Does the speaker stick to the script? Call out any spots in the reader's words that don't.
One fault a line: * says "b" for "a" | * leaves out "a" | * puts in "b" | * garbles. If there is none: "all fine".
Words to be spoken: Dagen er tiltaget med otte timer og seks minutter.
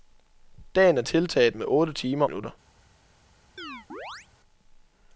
* leaves out "og seks"